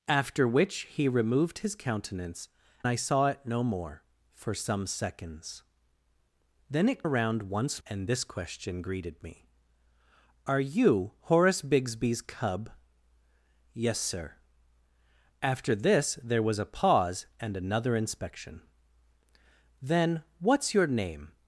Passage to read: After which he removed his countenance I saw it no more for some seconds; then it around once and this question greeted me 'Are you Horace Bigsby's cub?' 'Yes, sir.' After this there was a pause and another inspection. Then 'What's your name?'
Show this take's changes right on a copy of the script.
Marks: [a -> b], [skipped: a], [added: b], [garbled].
After which he removed his countenance I saw it no more for some seconds; then it around once and this question greeted me 'Are you Horace Bigsby's cub?' 'Yes, sir.' After this there was a pause and another inspection. Then 'What's your name?'